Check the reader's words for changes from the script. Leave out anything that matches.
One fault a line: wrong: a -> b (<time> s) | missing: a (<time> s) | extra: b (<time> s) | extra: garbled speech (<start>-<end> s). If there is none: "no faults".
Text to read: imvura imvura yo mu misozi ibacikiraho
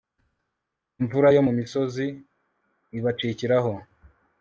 missing: imvura (1.3 s)